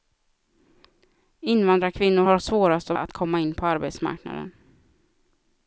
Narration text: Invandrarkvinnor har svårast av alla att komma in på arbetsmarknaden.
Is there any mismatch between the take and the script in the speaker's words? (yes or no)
yes